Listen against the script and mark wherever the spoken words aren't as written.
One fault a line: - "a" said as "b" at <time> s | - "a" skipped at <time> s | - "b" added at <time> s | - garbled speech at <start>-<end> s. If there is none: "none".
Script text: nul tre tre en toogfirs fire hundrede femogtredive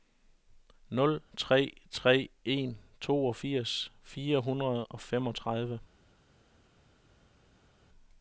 - "og" added at 4.8 s